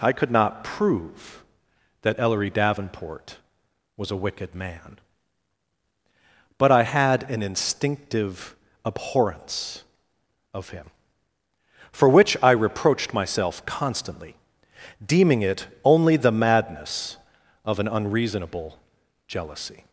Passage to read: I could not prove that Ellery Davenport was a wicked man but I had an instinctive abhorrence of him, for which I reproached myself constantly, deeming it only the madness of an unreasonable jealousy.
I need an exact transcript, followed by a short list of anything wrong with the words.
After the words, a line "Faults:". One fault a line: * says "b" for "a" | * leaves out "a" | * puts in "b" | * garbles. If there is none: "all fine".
I could not prove that Ellery Davenport was a wicked man but I had an instinctive abhorrence of him, for which I reproached myself constantly, deeming it only the madness of an unreasonable jealousy.
Faults:
all fine